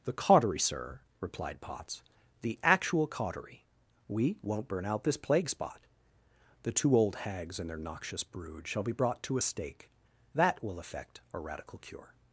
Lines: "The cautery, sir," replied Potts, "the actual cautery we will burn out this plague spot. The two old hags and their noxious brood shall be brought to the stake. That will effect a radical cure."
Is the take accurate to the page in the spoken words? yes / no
no